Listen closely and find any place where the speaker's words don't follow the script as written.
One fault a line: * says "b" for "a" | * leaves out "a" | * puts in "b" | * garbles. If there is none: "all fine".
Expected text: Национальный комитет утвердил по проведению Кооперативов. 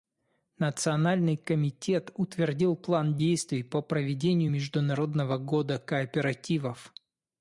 * puts in "план действий"
* puts in "Международного года"